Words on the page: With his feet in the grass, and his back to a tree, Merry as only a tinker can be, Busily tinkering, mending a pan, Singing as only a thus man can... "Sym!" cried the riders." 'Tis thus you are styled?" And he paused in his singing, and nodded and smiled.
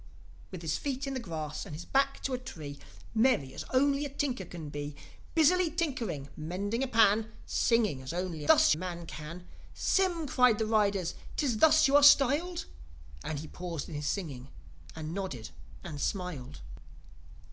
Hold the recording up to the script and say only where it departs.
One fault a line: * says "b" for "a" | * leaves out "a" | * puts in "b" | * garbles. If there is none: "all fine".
all fine